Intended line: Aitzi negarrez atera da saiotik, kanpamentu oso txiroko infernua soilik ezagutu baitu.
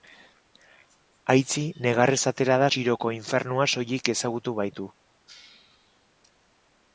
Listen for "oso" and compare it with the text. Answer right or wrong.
wrong